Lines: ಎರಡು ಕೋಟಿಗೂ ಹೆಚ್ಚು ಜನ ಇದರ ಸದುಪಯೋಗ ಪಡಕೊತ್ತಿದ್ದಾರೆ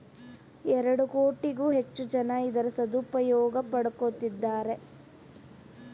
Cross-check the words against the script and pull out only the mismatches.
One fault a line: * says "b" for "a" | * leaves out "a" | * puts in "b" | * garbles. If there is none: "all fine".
all fine